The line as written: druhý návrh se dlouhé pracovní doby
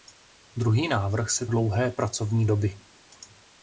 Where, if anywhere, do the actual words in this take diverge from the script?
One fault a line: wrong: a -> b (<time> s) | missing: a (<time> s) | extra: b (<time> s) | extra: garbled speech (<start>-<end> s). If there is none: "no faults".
no faults